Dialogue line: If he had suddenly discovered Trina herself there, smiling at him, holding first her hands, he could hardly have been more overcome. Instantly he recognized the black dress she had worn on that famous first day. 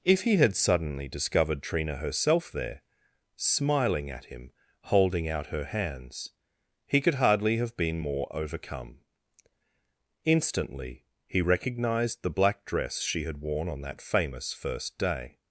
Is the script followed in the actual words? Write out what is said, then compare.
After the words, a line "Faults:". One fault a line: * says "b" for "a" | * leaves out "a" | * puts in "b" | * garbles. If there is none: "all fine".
If he had suddenly discovered Trina herself there, smiling at him, holding out her hands, he could hardly have been more overcome. Instantly he recognized the black dress she had worn on that famous first day.
Faults:
* says "out" for "first"